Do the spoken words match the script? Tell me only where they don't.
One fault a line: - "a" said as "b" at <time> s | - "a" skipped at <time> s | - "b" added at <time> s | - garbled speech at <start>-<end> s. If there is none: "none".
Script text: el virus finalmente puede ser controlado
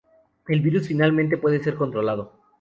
none